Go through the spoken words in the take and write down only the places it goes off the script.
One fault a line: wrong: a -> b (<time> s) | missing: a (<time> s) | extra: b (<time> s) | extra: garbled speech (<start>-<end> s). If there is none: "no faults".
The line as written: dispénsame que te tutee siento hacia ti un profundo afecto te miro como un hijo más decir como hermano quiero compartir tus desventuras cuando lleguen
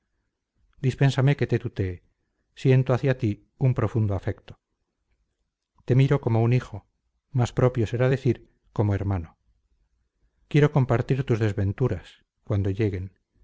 extra: propio será (7.5 s)